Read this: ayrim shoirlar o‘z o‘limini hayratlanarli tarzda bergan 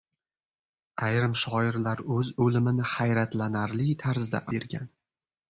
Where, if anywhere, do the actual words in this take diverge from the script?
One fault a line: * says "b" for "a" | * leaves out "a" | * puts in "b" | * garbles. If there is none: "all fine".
all fine